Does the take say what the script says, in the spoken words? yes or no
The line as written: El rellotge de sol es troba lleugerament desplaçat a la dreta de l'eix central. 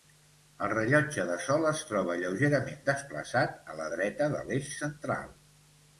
yes